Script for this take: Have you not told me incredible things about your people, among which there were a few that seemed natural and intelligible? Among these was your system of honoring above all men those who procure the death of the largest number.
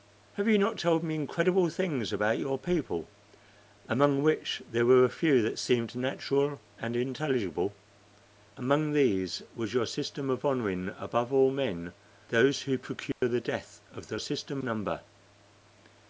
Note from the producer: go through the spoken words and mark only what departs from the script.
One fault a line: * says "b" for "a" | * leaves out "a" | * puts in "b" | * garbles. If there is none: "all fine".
* says "system" for "largest"